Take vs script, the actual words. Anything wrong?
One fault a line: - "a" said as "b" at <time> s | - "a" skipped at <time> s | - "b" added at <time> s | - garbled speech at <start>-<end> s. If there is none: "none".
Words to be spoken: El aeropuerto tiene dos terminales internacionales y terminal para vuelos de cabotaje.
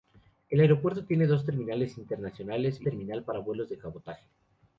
none